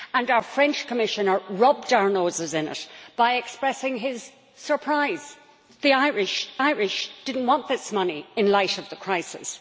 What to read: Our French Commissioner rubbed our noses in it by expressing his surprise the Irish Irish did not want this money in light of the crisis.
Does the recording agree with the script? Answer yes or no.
yes